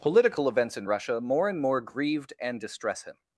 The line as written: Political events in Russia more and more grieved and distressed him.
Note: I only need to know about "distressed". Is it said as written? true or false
false